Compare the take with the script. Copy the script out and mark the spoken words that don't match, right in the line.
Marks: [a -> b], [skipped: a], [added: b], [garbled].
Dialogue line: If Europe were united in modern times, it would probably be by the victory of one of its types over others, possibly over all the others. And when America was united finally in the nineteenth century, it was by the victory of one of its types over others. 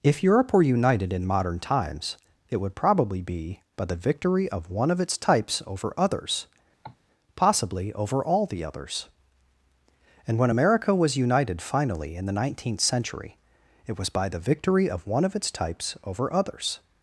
If Europe were united in modern times, it would probably be by the victory of one of its types over others, possibly over all the others. And when America was united finally in the nineteenth century, it was by the victory of one of its types over others.